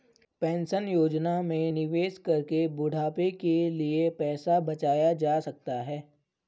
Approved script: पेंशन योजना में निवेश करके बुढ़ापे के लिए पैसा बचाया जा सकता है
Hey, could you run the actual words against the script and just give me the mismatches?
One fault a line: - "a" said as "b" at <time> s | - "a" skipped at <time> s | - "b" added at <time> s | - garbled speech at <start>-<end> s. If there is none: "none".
none